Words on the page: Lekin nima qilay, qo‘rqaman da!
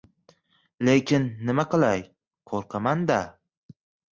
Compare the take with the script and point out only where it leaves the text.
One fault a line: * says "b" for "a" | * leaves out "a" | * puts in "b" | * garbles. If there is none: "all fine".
all fine